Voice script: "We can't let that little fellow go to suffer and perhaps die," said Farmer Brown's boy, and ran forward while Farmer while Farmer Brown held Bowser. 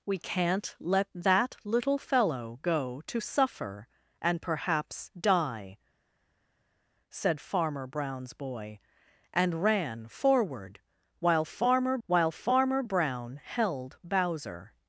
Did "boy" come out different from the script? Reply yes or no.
no